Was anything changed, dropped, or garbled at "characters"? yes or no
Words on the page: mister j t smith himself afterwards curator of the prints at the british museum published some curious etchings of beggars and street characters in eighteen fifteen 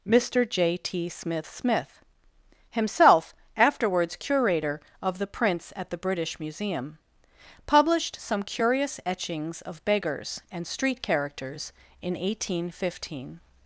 no